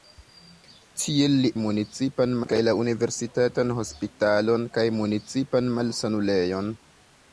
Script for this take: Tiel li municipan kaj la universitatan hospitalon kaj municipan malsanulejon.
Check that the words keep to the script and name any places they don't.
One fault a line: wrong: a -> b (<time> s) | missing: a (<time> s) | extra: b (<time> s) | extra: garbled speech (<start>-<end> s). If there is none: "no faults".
no faults